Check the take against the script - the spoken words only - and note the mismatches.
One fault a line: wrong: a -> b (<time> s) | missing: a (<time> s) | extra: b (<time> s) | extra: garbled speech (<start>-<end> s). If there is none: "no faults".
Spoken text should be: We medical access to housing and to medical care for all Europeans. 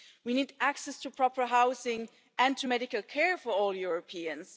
wrong: medical -> need (0.3 s)
extra: proper (1.1 s)